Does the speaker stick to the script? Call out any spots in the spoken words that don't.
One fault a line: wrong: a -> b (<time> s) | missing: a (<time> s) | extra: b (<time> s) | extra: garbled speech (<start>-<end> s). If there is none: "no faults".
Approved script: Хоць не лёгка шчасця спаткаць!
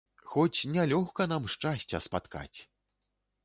extra: нам (1.3 s)